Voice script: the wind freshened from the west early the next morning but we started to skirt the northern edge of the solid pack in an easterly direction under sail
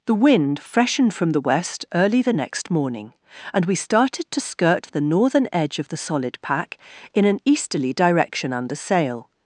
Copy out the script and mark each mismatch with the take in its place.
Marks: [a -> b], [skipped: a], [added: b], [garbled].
the wind freshened from the west early the next morning [but -> and] we started to skirt the northern edge of the solid pack in an easterly direction under sail